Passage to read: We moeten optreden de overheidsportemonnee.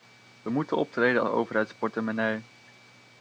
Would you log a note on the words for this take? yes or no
no